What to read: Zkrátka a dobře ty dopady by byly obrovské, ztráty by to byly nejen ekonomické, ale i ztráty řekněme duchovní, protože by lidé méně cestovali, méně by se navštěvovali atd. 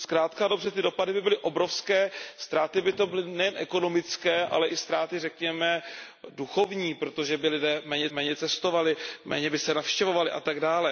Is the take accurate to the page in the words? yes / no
no